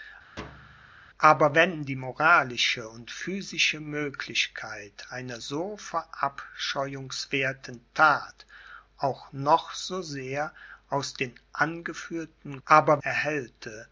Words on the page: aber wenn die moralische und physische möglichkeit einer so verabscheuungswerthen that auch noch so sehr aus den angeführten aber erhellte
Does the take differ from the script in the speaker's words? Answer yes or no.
no